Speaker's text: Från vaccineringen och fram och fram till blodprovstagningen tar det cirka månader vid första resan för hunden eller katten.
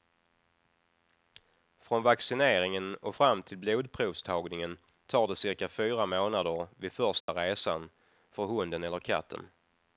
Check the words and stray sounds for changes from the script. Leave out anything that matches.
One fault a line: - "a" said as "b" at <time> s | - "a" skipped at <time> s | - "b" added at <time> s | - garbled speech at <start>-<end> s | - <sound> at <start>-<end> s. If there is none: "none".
- "och fram" skipped at 3.4 s
- "fyra" added at 5.7 s
- dropout at 7.2-7.3 s